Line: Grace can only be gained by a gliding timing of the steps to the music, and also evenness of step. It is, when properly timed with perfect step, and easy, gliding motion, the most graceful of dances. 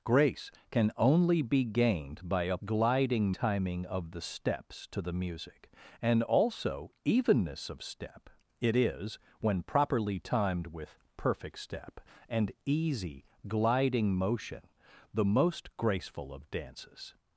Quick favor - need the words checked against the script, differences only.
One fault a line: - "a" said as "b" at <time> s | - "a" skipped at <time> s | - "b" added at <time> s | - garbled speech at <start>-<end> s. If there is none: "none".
none